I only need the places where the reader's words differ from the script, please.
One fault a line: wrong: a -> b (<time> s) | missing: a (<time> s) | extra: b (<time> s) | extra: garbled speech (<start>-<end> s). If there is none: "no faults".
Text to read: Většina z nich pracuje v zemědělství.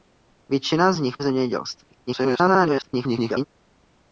missing: pracuje (1.2 s)
extra: garbled speech (2.1-3.5 s)